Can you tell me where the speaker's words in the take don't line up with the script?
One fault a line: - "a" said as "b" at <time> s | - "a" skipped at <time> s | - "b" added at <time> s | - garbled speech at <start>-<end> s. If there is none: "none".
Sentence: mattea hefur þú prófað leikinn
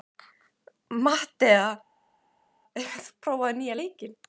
- "nýja" added at 3.6 s